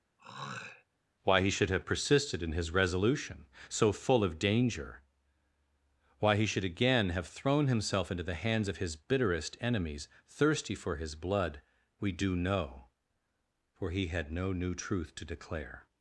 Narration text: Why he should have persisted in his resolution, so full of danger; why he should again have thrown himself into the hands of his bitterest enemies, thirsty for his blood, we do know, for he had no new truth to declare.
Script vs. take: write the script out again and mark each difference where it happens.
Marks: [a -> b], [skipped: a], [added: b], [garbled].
Why he should have persisted in his resolution, so full of danger; why he should again have thrown himself into the hands of his bitterest enemies, thirsty for his blood, we do know, for he had no new truth to declare.